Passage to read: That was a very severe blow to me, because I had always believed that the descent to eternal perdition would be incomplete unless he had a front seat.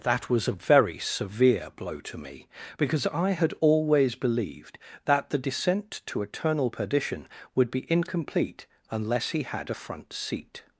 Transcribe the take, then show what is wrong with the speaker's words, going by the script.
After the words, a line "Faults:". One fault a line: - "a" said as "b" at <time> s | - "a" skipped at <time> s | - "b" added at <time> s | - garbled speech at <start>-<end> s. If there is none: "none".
That was a very severe blow to me, because I had always believed that the descent to eternal perdition would be incomplete unless he had a front seat.
Faults:
none